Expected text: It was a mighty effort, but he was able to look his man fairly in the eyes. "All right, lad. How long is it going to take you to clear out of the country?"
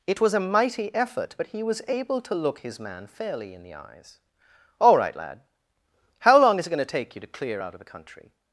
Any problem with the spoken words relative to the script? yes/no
no